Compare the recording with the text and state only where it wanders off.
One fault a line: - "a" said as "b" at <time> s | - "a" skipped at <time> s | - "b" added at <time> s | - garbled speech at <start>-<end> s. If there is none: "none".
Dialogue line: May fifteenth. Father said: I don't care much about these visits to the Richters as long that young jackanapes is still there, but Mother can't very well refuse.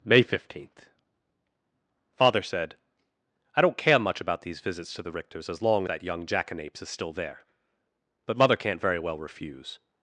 none